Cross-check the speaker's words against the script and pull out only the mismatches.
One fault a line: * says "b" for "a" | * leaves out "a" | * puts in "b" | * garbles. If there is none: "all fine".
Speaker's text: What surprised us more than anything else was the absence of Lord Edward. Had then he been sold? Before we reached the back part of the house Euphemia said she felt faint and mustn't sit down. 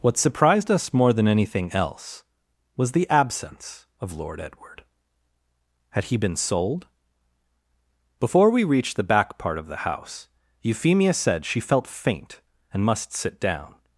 * leaves out "then"
* says "must" for "mustn't"